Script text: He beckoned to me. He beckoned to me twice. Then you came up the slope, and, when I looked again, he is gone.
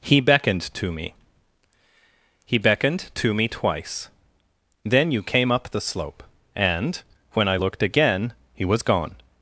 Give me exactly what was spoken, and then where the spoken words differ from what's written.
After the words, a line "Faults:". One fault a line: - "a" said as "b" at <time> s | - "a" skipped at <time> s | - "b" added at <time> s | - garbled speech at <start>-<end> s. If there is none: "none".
He beckoned to me. He beckoned to me twice. Then you came up the slope, and, when I looked again, he was gone.
Faults:
- "is" said as "was" at 8.6 s